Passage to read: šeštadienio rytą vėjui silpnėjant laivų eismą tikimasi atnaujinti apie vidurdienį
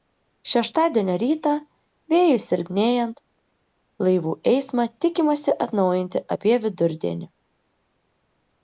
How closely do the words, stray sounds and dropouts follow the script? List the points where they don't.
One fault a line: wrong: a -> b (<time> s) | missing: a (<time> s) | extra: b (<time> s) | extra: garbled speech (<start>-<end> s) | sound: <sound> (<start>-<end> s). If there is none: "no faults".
no faults